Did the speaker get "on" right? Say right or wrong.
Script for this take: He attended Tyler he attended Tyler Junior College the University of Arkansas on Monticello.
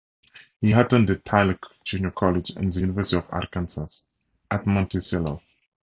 wrong